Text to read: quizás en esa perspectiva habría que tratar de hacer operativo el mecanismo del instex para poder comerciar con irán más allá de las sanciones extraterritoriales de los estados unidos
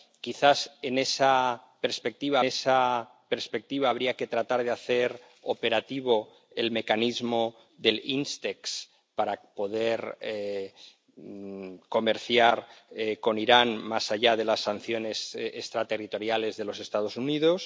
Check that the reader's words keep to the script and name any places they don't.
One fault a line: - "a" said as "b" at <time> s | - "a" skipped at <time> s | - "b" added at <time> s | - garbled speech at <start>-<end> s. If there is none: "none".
- "esa perspectiva" added at 2.4 s